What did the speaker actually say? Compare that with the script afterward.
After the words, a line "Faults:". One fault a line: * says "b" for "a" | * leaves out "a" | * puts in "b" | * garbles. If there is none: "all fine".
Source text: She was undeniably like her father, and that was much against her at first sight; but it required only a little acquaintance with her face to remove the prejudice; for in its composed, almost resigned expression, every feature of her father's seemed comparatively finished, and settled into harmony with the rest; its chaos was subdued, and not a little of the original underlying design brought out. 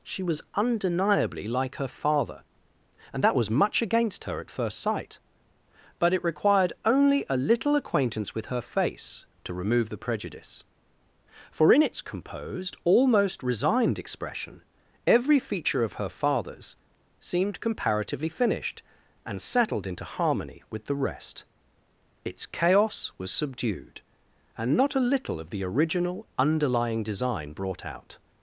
She was undeniably like her father, and that was much against her at first sight; but it required only a little acquaintance with her face to remove the prejudice; for in its composed, almost resigned expression, every feature of her father's seemed comparatively finished, and settled into harmony with the rest; its chaos was subdued, and not a little of the original underlying design brought out.
Faults:
all fine